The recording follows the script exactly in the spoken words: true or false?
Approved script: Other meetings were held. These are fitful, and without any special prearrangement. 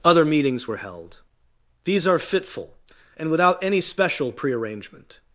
true